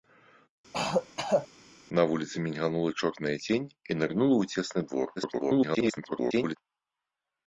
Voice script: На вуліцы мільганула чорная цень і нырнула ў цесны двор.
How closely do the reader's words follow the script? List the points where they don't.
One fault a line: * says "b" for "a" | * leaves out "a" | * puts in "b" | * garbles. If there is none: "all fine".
* garbles